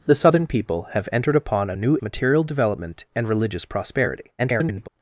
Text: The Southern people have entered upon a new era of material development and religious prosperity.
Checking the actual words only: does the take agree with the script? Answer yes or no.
no